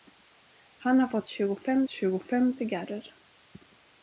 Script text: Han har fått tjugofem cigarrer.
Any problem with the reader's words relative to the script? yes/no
yes